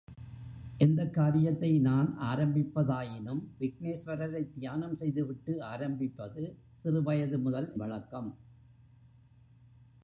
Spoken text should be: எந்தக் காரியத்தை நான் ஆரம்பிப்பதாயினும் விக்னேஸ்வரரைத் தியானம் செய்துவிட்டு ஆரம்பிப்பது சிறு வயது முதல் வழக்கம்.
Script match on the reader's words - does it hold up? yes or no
yes